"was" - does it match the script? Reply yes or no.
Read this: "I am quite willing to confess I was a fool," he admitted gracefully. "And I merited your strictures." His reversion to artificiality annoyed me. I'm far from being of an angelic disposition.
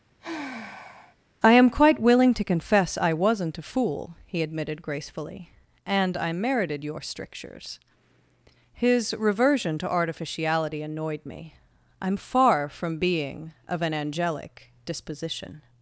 no